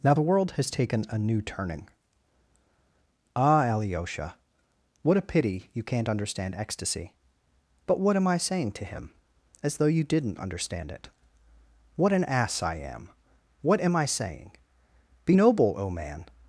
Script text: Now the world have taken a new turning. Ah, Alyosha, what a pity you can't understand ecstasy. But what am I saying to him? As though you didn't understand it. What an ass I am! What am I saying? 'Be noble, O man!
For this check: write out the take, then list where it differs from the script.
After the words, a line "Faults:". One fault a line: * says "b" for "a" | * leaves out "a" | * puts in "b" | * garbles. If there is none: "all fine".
Now the world has taken a new turning. Ah, Alyosha, what a pity you can't understand ecstasy. But what am I saying to him? As though you didn't understand it. What an ass I am! What am I saying? 'Be noble, O man!
Faults:
* says "has" for "have"